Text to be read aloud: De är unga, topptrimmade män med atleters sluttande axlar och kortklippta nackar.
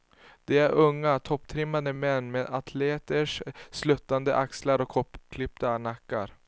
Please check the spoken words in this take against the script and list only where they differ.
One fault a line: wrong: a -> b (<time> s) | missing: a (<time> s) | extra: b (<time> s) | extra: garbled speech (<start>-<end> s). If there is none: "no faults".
no faults